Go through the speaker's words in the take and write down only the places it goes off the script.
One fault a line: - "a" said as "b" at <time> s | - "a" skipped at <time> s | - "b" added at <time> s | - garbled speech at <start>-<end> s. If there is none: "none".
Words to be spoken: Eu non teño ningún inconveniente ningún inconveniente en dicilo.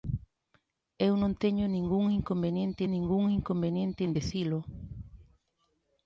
none